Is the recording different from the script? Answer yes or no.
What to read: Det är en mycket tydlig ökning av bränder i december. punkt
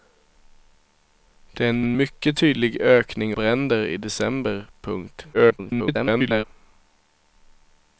yes